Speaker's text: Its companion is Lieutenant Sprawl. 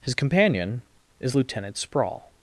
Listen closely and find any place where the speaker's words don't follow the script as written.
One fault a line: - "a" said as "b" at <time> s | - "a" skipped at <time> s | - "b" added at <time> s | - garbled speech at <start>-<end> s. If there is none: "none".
- "Its" said as "His" at 0.0 s